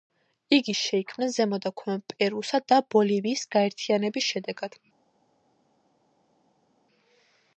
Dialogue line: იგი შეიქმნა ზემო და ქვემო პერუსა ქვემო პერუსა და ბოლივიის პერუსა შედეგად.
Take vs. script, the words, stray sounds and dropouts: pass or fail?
fail